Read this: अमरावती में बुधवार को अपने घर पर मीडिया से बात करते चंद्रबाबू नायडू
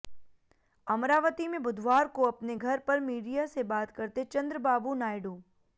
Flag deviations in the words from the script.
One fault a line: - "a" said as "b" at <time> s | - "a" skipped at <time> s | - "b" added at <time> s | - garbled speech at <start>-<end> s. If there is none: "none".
none